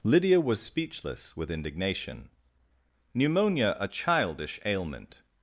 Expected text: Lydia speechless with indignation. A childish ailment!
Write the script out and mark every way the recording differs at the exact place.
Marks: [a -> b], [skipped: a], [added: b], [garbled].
Lydia [added: was] speechless with indignation. [added: Pneumonia] A childish ailment!